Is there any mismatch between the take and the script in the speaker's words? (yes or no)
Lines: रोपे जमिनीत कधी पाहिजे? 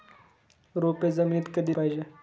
no